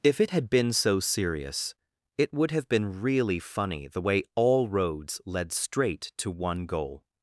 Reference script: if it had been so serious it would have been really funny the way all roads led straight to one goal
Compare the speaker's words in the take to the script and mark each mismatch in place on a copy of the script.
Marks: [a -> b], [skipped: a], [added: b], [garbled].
if it had been so serious it would have been really funny the way all roads led straight to one goal